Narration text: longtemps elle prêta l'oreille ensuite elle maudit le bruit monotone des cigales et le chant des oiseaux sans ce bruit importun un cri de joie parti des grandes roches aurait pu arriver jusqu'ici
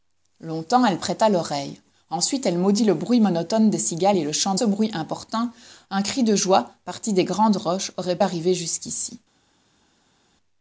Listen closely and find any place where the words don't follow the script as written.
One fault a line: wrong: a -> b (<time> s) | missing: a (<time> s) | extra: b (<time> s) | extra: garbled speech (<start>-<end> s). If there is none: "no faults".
missing: des oiseaux sans (4.6 s)
missing: pu (8.2 s)